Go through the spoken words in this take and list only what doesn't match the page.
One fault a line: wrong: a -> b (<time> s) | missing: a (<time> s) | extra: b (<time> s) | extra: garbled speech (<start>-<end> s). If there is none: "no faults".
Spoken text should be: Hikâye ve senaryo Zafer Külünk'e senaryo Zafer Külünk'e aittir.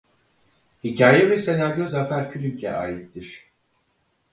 missing: senaryo Zafer Külünk'e (2.7 s)